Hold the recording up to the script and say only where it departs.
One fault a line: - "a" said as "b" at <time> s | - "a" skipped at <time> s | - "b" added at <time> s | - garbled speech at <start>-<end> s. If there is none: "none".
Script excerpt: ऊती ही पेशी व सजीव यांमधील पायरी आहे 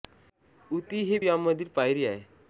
- "पेशी व सजीव" skipped at 1.2 s